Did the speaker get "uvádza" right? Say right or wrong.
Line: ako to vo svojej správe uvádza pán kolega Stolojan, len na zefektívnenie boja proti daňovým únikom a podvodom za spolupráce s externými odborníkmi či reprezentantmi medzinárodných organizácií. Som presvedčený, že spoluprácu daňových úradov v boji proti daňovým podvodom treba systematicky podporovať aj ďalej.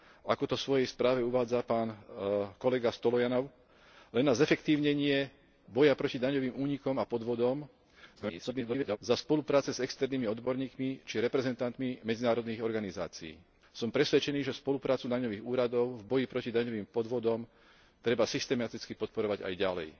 right